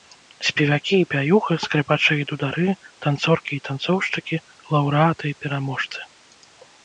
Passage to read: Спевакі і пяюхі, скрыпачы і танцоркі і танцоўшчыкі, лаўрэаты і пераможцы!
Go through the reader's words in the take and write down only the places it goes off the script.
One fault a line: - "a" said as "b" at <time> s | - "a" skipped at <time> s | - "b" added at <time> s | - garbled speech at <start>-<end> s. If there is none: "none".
- "дудары" added at 2.3 s